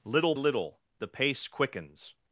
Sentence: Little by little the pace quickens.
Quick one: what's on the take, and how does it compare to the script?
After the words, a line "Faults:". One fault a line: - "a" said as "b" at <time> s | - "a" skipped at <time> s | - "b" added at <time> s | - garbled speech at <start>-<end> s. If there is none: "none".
Little little the pace quickens.
Faults:
- "by" skipped at 0.3 s